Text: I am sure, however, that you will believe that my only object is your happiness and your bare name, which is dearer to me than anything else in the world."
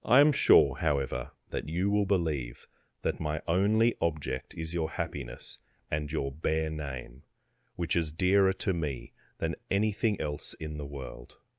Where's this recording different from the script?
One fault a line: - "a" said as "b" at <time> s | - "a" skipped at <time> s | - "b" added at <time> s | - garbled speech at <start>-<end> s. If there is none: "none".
none